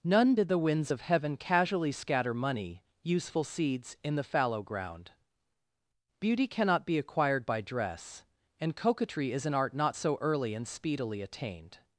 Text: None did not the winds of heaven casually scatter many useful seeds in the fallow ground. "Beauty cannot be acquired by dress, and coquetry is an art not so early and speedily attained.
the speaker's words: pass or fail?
fail